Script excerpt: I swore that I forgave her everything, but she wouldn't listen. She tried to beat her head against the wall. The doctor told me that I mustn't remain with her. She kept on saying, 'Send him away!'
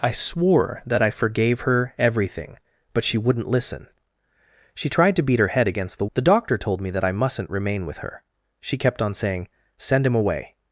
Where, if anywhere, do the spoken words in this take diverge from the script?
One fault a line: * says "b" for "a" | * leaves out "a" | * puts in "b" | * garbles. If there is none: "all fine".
* leaves out "wall"